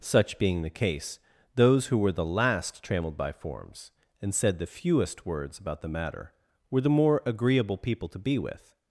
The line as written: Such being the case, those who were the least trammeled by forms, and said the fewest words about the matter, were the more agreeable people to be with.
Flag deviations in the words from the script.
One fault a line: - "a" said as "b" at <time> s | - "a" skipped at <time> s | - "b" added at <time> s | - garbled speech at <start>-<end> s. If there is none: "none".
- "least" said as "last" at 2.2 s